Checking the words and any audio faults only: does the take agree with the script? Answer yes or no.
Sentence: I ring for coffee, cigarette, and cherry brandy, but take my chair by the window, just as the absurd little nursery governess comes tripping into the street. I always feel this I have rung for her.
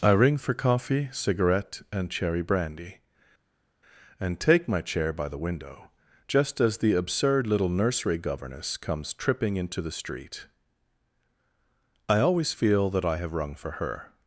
no